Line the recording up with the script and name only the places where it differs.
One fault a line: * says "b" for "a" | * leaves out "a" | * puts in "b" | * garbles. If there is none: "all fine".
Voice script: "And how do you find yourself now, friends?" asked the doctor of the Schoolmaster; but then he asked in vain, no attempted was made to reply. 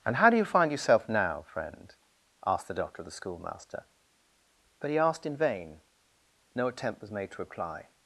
* says "friend" for "friends"
* leaves out "then"
* says "attempt" for "attempted"